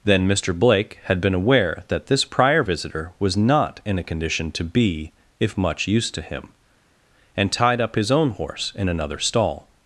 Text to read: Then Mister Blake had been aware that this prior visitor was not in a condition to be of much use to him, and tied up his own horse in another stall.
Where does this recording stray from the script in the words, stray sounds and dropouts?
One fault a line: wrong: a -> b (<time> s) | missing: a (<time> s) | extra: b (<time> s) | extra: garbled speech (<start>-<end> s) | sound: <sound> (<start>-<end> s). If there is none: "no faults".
wrong: of -> if (5.4 s)